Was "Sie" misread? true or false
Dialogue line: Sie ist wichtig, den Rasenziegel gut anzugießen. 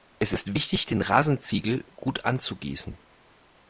true